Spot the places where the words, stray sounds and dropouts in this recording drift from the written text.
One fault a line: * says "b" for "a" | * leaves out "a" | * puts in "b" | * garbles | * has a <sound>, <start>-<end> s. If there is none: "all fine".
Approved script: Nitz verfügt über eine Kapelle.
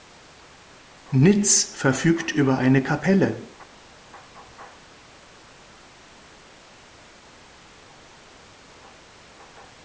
all fine